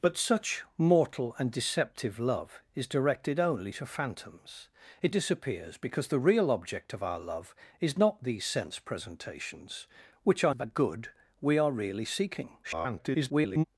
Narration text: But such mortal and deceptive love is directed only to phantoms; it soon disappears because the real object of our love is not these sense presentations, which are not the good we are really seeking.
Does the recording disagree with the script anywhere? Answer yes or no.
yes